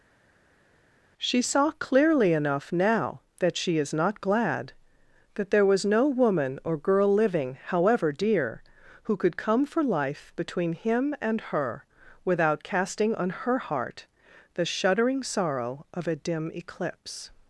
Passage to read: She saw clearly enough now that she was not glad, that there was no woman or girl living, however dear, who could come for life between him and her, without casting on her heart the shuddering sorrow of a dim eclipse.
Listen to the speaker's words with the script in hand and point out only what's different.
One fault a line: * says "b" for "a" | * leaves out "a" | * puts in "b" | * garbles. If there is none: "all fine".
* says "is" for "was"